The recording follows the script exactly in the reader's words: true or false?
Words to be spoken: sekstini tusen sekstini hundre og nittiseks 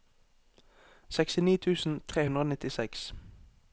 false